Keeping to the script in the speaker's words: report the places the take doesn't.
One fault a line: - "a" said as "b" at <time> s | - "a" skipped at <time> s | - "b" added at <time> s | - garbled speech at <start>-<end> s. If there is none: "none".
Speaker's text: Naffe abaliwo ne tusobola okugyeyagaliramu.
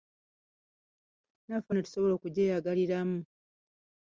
- "abaliwo" skipped at 1.7 s